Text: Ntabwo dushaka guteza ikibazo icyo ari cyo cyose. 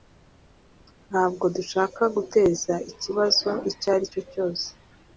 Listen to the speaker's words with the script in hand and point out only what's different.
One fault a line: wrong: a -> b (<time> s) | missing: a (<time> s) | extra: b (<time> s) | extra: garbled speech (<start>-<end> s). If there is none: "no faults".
no faults